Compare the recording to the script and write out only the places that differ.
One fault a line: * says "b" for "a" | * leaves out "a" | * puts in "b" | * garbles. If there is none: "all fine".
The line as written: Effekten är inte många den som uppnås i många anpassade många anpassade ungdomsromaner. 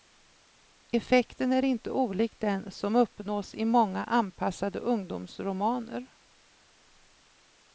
* says "olik" for "många"
* leaves out "många anpassade"